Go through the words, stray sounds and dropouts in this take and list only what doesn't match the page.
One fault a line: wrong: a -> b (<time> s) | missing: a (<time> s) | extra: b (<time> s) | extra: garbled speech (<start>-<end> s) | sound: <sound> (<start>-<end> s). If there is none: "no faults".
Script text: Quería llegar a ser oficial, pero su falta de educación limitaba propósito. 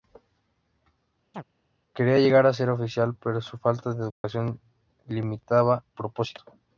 sound: chirp (1.3-1.4 s)
sound: dropout (4.1-4.2 s)